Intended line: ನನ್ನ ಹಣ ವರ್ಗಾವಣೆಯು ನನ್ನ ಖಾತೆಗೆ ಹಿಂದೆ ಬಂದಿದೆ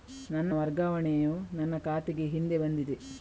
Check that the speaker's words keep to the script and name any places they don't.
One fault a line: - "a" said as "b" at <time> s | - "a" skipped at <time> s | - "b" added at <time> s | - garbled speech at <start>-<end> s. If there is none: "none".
- "ಹಣ" skipped at 0.5 s